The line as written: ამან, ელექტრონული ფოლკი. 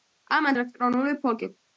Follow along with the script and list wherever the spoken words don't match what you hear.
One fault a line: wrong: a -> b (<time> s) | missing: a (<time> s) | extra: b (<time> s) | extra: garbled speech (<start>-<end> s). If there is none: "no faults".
no faults